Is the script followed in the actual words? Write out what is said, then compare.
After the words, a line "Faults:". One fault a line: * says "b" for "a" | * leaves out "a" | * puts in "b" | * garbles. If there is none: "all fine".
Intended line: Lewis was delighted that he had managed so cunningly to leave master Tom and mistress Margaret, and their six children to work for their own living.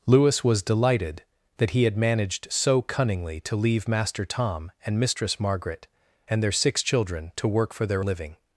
Lewis was delighted that he had managed so cunningly to leave master Tom and mistress Margaret, and their six children to work for their living.
Faults:
* leaves out "own"